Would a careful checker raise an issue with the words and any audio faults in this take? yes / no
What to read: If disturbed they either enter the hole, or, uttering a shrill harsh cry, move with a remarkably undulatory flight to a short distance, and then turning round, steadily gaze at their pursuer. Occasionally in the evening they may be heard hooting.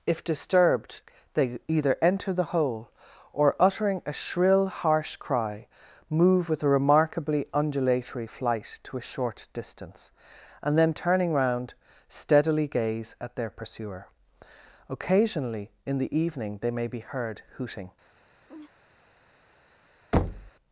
yes